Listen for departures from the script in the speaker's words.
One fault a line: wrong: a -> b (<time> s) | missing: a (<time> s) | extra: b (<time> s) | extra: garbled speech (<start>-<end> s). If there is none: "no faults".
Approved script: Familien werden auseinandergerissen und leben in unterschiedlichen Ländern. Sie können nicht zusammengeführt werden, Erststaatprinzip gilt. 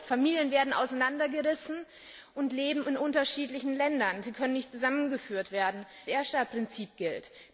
no faults